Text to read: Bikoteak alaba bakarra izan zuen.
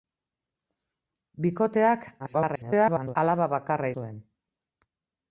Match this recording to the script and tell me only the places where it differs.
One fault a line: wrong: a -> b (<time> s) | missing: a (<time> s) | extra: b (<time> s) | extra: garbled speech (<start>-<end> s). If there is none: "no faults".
extra: garbled speech (2.2-3.2 s)
missing: izan (3.9 s)